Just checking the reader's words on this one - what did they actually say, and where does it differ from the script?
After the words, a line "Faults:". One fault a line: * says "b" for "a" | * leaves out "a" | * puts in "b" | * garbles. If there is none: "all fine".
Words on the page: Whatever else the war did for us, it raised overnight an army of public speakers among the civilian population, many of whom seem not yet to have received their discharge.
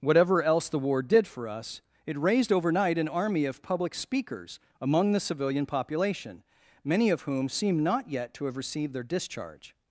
Whatever else the war did for us, it raised overnight an army of public speakers among the civilian population, many of whom seem not yet to have received their discharge.
Faults:
all fine